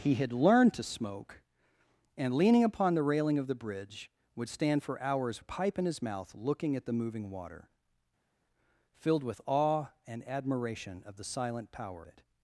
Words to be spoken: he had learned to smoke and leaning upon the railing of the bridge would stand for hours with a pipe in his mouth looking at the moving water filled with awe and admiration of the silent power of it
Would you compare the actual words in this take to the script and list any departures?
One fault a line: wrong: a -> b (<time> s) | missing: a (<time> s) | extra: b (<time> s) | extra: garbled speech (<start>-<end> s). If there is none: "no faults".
missing: with (5.4 s)
missing: of (12.0 s)